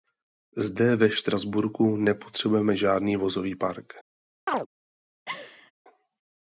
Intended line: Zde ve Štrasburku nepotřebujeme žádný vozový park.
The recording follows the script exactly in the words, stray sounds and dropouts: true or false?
false